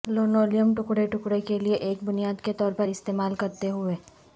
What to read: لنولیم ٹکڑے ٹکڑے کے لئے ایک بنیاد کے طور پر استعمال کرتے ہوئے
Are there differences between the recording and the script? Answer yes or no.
no